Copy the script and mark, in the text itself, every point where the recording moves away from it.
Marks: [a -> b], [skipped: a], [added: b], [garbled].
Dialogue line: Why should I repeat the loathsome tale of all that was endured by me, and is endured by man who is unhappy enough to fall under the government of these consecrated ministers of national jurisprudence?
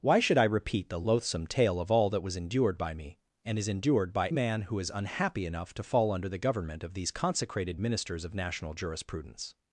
Why should I repeat the loathsome tale of all that was endured by me, and is endured by man who is unhappy enough to fall under the government of these consecrated ministers of national jurisprudence?